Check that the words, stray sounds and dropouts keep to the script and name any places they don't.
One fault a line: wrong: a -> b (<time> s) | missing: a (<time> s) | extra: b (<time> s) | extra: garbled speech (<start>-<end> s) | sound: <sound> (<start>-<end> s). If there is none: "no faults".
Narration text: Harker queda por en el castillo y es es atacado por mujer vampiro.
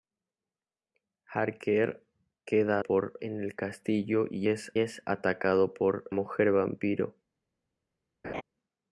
sound: laugh (8.2-8.4 s)